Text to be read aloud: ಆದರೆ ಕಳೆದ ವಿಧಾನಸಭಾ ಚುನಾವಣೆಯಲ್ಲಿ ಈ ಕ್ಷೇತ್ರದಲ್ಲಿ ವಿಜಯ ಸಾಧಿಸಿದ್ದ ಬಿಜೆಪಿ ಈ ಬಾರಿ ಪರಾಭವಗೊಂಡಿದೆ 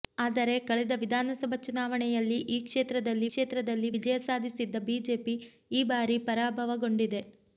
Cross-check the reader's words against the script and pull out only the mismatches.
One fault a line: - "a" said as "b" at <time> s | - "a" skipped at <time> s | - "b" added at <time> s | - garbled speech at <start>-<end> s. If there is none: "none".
- "ಕ್ಷೇತ್ರದಲ್ಲಿ" added at 3.3 s